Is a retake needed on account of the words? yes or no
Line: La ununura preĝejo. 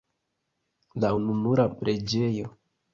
no